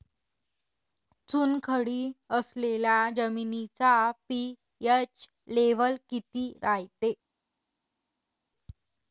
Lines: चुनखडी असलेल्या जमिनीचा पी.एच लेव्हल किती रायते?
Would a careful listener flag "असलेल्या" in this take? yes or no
no